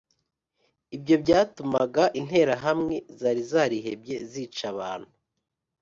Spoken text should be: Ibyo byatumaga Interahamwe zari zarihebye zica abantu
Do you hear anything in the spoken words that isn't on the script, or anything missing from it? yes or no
no